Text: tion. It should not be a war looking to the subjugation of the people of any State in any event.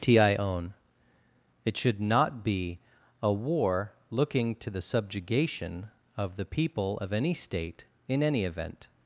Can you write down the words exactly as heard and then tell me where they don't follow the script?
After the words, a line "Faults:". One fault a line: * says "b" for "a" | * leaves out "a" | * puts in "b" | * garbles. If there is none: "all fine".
tion. It should not be a war looking to the subjugation of the people of any State in any event.
Faults:
all fine